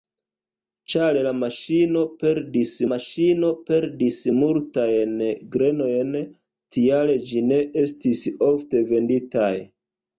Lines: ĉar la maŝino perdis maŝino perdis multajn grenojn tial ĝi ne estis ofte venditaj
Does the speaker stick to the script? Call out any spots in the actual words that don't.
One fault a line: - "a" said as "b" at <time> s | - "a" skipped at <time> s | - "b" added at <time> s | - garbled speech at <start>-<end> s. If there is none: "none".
none